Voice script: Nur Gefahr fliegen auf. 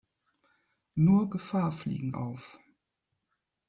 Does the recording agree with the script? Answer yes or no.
yes